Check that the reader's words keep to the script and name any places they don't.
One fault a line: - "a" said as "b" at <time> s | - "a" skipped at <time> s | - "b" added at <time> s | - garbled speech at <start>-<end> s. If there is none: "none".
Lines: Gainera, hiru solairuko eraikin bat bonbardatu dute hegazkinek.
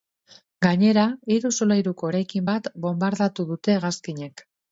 none